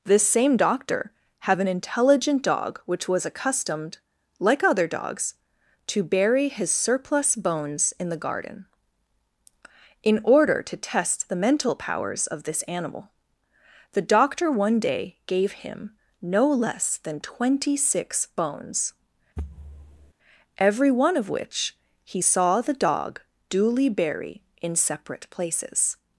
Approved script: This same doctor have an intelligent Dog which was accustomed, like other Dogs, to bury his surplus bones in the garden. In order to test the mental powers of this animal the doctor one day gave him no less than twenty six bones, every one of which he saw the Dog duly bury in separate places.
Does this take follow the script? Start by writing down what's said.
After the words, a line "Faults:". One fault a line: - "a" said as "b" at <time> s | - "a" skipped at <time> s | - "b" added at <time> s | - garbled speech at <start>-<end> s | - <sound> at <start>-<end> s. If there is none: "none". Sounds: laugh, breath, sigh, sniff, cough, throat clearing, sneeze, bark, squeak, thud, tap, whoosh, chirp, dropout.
This same doctor have an intelligent Dog which was accustomed, like other Dogs, to bury his surplus bones in the garden. In order to test the mental powers of this animal the doctor one day gave him no less than twenty six bones, every one of which he saw the Dog duly bury in separate places.
Faults:
- thud at 19.4-20.1 s